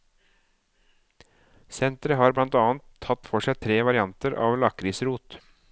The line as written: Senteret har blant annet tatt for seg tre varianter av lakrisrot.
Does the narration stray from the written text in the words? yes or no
no